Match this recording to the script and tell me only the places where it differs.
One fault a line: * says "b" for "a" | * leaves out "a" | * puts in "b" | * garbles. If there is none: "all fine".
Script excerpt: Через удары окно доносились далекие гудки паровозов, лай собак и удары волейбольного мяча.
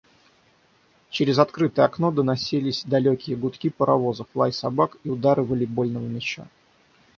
* says "открытое" for "удары"